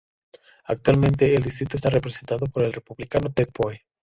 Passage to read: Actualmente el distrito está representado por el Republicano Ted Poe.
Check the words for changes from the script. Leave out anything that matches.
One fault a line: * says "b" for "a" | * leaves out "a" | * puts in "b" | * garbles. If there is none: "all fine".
all fine